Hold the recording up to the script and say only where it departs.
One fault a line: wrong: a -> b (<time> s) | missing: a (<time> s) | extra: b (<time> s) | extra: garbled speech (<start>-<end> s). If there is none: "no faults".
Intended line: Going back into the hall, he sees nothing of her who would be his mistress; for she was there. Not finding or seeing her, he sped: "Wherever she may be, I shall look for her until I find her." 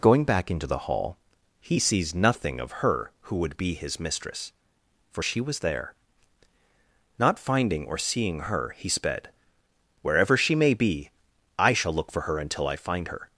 no faults